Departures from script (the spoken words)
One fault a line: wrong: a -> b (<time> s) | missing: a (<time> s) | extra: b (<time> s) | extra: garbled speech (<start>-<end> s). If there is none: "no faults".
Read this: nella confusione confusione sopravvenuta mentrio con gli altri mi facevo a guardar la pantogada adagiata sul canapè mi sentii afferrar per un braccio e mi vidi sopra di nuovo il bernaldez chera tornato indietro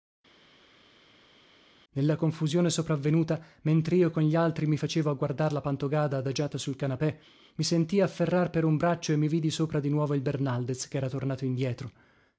missing: confusione (2.7 s)